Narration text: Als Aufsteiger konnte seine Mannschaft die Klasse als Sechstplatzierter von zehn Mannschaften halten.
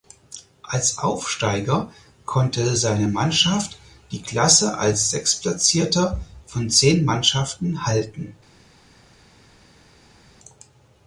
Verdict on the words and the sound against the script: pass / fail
pass